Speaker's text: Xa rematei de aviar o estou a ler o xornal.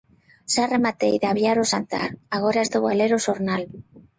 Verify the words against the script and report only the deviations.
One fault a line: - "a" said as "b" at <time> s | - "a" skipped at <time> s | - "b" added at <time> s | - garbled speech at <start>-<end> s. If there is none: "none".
- "xantar agora" added at 1.7 s